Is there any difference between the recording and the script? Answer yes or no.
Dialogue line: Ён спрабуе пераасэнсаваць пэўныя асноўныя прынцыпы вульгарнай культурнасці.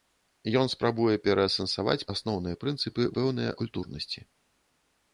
yes